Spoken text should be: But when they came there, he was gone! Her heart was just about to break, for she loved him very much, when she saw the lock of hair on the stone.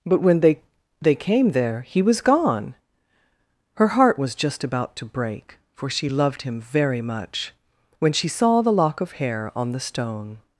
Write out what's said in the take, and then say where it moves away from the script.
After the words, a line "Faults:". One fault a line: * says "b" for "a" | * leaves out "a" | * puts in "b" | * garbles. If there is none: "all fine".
But when they they came there, he was gone! Her heart was just about to break, for she loved him very much, when she saw the lock of hair on the stone.
Faults:
* puts in "they"